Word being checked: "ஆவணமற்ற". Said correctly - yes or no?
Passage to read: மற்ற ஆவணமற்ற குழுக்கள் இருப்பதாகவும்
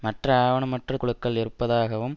yes